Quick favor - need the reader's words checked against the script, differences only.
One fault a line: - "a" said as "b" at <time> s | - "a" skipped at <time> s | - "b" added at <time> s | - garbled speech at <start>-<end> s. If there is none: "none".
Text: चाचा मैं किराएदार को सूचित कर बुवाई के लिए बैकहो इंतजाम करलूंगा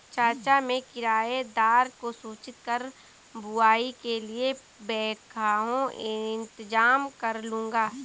none